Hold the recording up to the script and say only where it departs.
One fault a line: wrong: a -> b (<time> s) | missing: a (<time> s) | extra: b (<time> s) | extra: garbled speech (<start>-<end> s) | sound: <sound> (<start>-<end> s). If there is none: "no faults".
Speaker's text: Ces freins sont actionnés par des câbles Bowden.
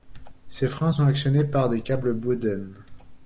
no faults